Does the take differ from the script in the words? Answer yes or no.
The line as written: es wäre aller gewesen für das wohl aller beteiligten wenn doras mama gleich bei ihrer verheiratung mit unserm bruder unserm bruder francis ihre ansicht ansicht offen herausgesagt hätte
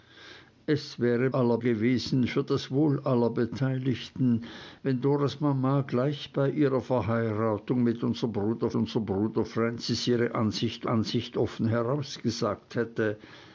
no